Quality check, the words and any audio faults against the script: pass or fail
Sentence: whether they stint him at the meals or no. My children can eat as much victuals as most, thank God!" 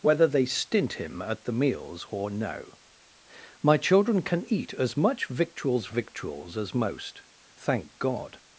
fail